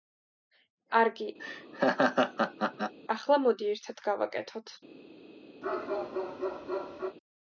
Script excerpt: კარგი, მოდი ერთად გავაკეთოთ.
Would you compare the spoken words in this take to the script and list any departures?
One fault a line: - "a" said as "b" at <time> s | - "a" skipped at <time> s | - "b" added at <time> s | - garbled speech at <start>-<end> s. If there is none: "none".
- "ახლა" added at 3.1 s